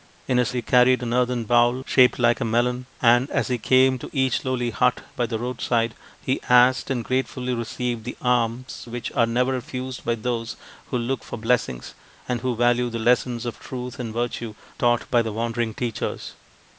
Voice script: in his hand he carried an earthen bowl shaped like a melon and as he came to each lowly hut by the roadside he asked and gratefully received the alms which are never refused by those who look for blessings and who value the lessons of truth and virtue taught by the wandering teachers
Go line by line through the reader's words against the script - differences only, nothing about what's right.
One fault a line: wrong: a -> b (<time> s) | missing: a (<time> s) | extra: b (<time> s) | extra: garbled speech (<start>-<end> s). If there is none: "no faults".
missing: hand (0.5 s)